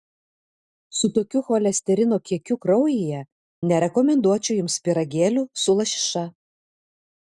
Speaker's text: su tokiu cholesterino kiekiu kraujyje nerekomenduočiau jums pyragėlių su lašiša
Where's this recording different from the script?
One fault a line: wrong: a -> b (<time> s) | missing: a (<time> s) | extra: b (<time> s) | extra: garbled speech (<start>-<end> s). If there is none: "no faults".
no faults